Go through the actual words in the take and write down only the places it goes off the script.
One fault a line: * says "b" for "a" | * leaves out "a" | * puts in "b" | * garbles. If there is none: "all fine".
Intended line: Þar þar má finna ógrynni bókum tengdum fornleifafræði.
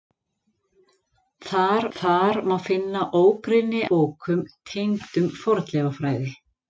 all fine